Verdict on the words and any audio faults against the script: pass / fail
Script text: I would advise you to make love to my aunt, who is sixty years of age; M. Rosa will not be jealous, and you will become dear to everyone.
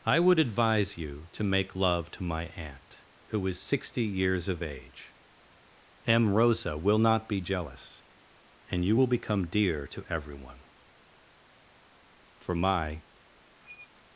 fail